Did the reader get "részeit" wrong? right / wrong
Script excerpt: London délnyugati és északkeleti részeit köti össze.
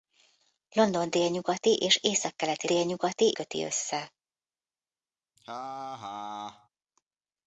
wrong